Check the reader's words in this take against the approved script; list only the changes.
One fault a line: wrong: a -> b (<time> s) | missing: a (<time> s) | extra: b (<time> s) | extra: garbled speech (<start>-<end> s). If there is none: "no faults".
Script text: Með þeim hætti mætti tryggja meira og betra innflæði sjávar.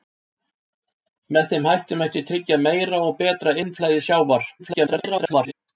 extra: garbled speech (4.6-5.5 s)